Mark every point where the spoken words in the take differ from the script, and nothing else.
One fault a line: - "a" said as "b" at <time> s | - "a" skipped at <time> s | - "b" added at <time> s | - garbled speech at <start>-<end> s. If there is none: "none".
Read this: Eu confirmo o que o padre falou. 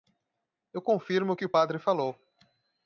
none